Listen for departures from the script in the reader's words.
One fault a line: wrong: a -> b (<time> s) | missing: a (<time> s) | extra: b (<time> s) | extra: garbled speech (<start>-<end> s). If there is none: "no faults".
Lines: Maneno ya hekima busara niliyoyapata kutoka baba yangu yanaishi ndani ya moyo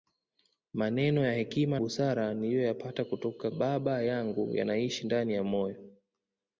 no faults